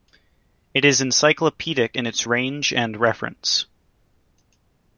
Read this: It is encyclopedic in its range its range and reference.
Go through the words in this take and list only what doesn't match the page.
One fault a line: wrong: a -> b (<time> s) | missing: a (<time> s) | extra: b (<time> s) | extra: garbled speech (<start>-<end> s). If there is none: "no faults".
missing: its range (2.7 s)